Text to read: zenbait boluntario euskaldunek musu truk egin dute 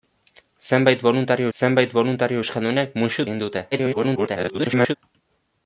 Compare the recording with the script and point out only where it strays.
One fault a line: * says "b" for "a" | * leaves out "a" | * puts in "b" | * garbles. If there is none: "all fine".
* puts in "zenbait boluntario"
* leaves out "truk"
* garbles